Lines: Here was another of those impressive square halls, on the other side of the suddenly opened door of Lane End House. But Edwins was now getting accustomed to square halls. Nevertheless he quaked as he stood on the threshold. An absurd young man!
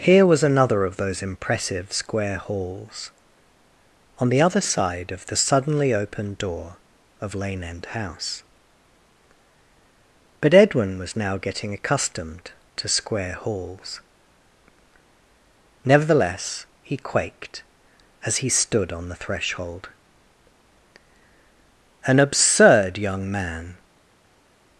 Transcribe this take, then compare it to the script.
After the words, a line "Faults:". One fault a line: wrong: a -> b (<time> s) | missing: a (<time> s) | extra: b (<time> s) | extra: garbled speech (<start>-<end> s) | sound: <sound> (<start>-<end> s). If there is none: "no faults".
Here was another of those impressive square halls, on the other side of the suddenly opened door of Lane End House. But Edwin was now getting accustomed to square halls. Nevertheless he quaked as he stood on the threshold. An absurd young man!
Faults:
wrong: Edwins -> Edwin (10.5 s)